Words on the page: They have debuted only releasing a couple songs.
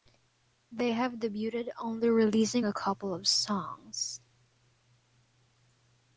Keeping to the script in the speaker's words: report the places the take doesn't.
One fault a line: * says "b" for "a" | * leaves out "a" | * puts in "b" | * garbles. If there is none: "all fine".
* puts in "of"